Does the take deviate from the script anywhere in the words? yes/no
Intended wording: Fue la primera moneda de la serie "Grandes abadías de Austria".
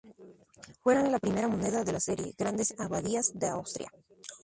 no